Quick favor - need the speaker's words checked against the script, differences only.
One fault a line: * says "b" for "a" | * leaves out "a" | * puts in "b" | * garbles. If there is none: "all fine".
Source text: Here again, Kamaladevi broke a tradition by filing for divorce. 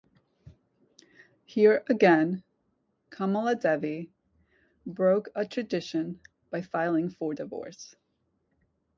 all fine